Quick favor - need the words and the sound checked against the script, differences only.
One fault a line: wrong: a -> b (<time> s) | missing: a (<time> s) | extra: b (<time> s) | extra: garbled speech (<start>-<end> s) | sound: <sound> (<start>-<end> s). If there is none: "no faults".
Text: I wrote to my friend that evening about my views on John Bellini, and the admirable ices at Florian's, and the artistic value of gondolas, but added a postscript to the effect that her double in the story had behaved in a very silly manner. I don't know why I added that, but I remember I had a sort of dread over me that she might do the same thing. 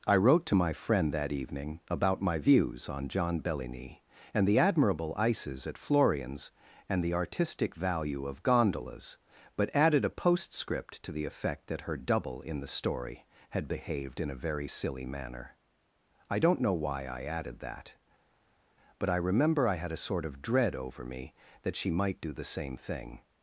no faults